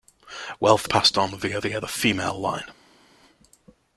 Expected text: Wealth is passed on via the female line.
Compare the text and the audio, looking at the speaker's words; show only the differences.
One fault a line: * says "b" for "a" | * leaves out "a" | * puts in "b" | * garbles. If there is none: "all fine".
* leaves out "is"
* puts in "via"